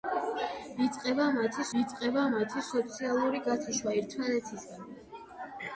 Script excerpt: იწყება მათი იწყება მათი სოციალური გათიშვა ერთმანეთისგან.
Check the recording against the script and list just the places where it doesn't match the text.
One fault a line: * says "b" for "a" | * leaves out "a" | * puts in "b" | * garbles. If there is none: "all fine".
all fine